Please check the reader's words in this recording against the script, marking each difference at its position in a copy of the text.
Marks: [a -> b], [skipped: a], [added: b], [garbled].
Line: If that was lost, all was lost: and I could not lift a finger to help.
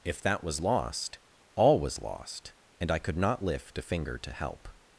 If that was lost, all was lost: and I could not lift a finger to help.